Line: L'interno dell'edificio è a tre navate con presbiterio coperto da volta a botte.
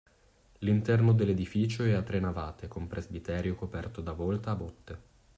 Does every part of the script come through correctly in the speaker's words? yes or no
yes